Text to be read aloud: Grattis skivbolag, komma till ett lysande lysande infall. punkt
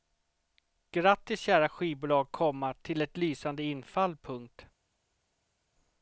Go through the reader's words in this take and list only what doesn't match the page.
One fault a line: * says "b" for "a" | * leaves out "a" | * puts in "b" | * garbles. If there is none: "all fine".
* puts in "kära"
* leaves out "lysande"